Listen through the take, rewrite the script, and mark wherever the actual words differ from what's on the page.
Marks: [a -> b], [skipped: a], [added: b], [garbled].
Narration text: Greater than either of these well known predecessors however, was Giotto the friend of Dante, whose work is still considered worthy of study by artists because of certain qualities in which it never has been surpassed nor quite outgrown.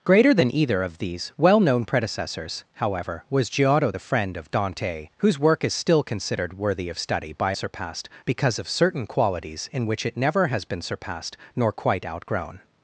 Greater than either of these well known predecessors however, was Giotto the friend of Dante, whose work is still considered worthy of study by [artists -> surpassed] because of certain qualities in which it never has been surpassed nor quite outgrown.